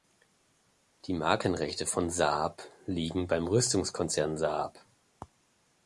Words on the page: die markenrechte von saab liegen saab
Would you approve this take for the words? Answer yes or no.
no